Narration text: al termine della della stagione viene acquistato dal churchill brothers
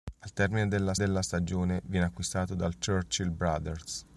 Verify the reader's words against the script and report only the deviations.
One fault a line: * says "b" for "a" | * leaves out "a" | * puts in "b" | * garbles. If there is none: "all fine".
all fine